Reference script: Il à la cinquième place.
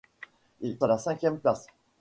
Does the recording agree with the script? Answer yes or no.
yes